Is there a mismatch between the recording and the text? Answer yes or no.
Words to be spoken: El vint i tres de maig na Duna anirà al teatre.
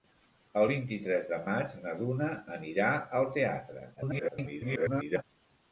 yes